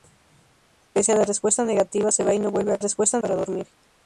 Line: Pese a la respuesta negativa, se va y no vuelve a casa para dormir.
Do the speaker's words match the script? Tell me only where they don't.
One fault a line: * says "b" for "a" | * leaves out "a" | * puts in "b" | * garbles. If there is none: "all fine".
* says "respuesta" for "casa"